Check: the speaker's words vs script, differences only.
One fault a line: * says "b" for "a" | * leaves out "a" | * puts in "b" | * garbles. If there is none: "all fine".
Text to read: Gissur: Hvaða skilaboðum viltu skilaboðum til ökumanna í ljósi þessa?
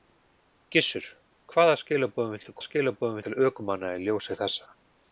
all fine